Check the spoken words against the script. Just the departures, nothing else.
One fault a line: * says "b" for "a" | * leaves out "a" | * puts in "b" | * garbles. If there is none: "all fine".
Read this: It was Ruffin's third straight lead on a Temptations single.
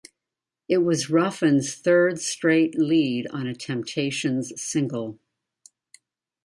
all fine